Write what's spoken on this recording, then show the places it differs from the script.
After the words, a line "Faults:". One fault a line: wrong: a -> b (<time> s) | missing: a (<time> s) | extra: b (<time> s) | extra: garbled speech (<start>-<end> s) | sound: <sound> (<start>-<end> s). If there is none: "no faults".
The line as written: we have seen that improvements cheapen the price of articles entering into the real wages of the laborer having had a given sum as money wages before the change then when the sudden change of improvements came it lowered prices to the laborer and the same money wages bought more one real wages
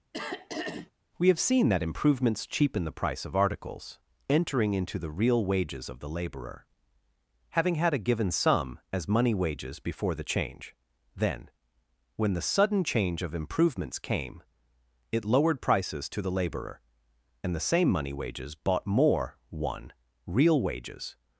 we have seen that improvements cheapen the price of articles entering into the real wages of the laborer having had a given sum as money wages before the change then when the sudden change of improvements came it lowered prices to the laborer and the same money wages bought more one real wages
Faults:
sound: throat clearing (0.1-0.9 s)